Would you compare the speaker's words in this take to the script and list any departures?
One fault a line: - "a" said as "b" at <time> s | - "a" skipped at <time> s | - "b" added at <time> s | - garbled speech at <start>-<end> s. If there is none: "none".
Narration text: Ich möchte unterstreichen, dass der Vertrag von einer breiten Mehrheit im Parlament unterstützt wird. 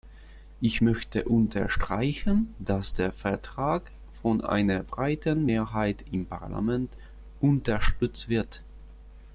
none